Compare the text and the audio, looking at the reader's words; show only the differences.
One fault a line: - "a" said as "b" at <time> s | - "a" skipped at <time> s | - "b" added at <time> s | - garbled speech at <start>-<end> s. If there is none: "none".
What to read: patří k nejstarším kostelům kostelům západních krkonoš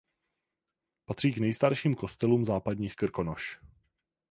- "kostelům" skipped at 2.5 s